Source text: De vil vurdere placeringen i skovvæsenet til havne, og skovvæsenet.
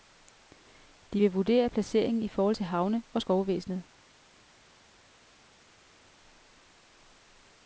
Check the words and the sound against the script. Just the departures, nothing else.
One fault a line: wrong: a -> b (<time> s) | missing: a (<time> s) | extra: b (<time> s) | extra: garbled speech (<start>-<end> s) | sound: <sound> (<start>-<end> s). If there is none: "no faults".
wrong: skovvæsenet -> forhold (2.3 s)